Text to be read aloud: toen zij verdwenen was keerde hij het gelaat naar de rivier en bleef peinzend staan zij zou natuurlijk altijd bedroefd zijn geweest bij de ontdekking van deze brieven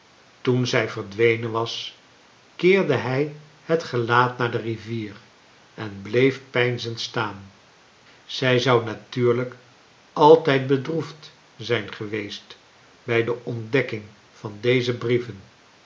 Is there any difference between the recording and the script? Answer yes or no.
no